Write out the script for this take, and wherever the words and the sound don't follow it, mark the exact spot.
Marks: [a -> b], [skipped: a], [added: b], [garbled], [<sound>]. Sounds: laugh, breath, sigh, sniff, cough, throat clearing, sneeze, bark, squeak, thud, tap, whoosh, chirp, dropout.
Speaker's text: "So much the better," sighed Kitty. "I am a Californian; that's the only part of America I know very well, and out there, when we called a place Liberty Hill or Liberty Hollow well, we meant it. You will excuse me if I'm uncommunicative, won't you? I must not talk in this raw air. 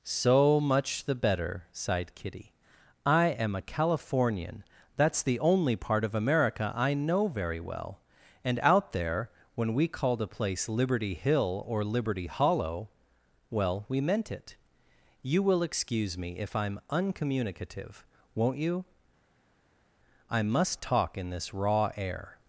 "So much the better," sighed Kitty. "I am a Californian; that's the only part of America I know very well, and out there, when we called a place Liberty Hill or Liberty Hollow well, we meant it. You will excuse me if I'm uncommunicative, won't you? I must [skipped: not] talk in this raw air.